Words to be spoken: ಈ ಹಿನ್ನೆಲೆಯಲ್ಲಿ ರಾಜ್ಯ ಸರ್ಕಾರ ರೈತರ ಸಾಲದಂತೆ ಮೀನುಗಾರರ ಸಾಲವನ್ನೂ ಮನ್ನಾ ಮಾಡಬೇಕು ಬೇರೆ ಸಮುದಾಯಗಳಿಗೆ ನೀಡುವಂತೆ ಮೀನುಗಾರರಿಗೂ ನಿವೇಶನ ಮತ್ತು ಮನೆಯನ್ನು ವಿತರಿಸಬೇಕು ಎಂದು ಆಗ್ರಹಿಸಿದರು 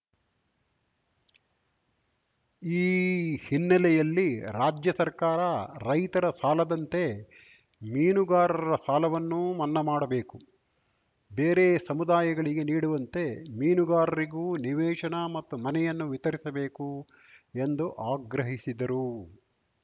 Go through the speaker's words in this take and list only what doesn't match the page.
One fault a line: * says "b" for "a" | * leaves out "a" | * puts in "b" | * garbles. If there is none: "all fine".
all fine